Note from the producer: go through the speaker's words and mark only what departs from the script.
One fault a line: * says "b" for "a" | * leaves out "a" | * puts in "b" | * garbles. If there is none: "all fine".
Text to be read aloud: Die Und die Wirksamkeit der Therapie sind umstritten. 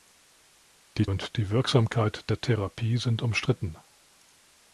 all fine